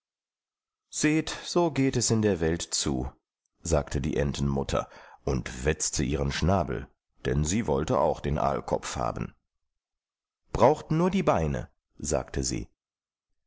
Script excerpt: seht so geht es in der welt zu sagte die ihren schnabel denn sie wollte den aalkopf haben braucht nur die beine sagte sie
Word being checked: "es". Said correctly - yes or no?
yes